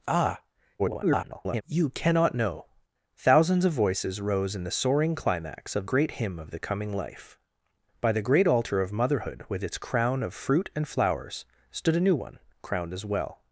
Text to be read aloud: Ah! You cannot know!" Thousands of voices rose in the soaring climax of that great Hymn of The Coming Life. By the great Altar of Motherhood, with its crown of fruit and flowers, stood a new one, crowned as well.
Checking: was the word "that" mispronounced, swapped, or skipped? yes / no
yes